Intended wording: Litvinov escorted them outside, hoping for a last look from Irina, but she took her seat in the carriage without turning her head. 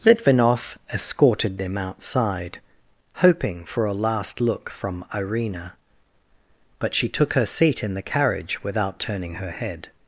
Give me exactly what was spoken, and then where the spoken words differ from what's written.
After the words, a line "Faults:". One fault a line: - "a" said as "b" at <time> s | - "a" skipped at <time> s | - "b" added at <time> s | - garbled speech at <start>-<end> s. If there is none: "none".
Litvinov escorted them outside, hoping for a last look from Irina, but she took her seat in the carriage without turning her head.
Faults:
none